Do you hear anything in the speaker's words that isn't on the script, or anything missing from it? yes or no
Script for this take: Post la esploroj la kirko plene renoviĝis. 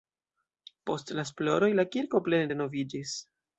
no